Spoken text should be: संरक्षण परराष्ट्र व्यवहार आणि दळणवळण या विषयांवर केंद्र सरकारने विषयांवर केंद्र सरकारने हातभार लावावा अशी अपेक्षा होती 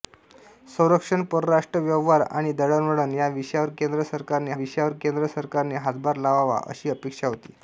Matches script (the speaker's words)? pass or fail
pass